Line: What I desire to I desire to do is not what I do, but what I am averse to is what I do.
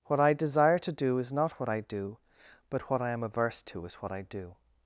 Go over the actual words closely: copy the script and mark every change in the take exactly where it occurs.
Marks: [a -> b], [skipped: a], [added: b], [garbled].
What I desire to [skipped: I desire to] do is not what I do, but what I am averse to is what I do.